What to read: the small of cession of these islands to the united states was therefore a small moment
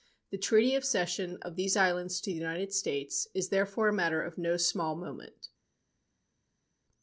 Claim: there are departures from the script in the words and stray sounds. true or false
true